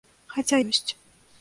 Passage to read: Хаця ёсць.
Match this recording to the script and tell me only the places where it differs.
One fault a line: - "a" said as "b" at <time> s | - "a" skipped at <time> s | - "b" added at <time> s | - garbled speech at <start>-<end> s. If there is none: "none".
none